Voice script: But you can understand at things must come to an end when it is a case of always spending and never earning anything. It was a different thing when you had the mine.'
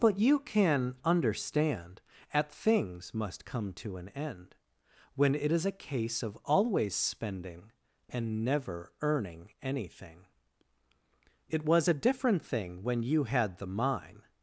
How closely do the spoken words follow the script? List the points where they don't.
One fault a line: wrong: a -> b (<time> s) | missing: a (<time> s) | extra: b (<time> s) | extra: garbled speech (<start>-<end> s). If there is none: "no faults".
no faults